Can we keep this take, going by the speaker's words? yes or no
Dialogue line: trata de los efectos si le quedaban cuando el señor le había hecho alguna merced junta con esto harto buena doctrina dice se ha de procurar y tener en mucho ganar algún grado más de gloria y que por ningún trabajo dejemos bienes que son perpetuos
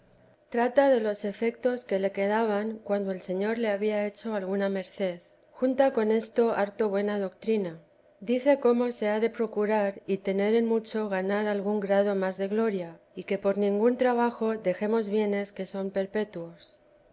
no